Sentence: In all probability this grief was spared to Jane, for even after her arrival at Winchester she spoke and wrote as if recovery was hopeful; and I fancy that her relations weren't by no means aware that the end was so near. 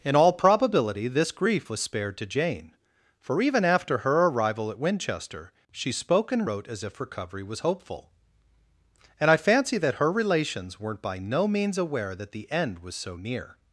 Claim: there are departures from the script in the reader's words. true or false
false